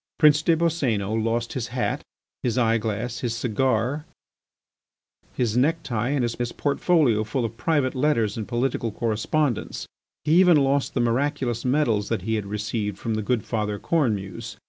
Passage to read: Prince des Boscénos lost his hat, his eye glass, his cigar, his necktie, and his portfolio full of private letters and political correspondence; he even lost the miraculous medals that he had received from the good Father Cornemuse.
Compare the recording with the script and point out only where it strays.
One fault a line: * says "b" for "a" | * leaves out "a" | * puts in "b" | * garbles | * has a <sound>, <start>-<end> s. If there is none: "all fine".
* puts in "his"